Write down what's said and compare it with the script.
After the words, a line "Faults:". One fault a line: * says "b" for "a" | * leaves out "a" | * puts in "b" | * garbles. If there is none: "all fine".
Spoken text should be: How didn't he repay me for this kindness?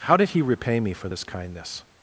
How did he repay me for this kindness?
Faults:
* says "did" for "didn't"